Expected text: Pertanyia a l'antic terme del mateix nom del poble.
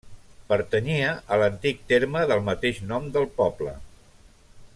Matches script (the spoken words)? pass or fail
pass